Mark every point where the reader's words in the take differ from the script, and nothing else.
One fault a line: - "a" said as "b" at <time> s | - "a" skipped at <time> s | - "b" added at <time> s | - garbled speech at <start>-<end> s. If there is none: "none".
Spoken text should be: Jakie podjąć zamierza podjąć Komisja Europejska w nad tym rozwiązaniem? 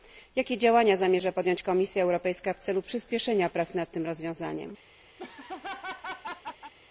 - "podjąć" said as "działania" at 0.6 s
- "celu przyspieszenia prac" added at 2.6 s